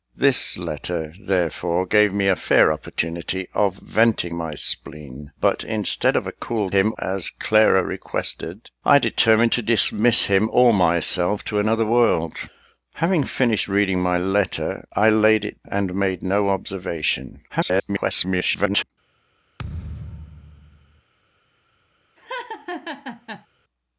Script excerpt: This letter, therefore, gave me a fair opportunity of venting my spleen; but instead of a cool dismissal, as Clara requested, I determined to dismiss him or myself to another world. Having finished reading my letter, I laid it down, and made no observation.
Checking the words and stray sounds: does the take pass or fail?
fail